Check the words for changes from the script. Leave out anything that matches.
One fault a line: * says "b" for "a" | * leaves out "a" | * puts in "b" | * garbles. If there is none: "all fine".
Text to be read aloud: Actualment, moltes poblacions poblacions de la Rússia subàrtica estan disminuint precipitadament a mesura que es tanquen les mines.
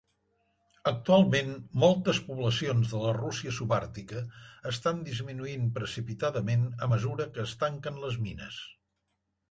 * leaves out "poblacions"